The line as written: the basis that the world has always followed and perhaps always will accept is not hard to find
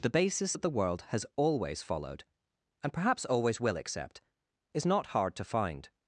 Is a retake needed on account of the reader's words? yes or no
no